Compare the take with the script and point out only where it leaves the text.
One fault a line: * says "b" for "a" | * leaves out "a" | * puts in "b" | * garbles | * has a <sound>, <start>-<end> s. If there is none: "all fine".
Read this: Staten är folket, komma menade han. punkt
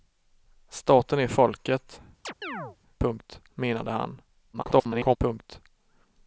* has a chirp, 2.2-2.8 s
* says "punkt" for "komma"
* garbles